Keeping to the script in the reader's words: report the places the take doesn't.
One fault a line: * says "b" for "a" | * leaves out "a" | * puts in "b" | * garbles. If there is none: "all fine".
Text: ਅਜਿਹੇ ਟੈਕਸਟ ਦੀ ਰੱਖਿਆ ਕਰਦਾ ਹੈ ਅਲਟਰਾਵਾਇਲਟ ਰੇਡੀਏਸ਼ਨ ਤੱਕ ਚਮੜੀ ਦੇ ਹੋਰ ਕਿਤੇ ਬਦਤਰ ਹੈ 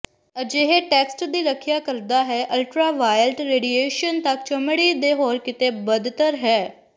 all fine